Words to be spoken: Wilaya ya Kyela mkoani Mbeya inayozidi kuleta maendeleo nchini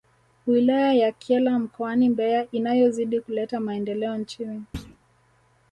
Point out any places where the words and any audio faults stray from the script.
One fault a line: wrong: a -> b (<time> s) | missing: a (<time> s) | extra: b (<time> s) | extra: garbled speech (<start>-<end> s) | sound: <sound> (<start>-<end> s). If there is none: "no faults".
sound: thud (4.7-5.0 s)